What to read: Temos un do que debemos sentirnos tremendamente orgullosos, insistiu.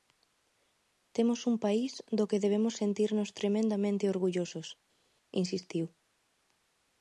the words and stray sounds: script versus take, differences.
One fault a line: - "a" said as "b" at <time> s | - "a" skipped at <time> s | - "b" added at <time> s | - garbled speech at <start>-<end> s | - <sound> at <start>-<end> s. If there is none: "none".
- "país" added at 1.6 s